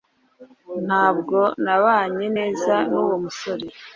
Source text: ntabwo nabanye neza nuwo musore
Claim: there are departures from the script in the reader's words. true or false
false